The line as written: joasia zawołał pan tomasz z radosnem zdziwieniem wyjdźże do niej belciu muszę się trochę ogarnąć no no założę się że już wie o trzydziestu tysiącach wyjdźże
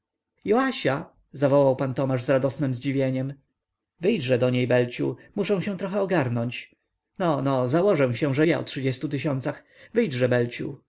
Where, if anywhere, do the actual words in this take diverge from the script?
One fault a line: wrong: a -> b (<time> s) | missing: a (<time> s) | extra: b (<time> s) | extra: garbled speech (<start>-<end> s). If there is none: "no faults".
missing: już (8.5 s)